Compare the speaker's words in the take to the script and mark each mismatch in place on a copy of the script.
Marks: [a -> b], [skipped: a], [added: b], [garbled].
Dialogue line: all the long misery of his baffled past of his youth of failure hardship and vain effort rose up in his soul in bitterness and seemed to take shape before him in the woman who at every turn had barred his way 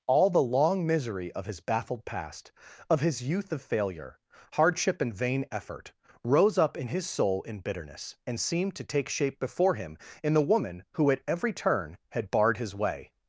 all the long misery of his baffled past of his youth of failure hardship and vain effort rose up in his soul in bitterness and seemed to take shape before him in the woman who at every turn had barred his way